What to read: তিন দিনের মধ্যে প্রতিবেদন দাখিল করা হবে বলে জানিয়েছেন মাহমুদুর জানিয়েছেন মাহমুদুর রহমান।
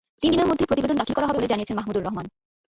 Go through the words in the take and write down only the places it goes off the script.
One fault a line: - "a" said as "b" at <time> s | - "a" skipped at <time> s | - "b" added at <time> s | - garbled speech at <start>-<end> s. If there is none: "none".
- "জানিয়েছেন মাহমুদুর" skipped at 2.0 s